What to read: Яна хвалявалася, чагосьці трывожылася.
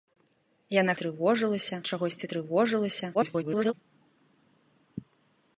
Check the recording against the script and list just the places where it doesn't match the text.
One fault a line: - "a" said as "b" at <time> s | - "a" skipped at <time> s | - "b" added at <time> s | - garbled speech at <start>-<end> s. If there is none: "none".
- "хвалявалася" said as "трывожылася" at 1.0 s
- garbled speech at 3.1-3.7 s